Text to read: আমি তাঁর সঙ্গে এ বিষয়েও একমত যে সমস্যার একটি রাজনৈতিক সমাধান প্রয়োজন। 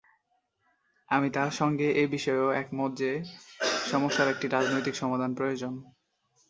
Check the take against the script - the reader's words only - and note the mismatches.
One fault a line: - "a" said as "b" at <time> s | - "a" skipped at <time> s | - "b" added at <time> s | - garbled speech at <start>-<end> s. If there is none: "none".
none